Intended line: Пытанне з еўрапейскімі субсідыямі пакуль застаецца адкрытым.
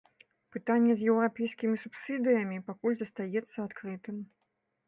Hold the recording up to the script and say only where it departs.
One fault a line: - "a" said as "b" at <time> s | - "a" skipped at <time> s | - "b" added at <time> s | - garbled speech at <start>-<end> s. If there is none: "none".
none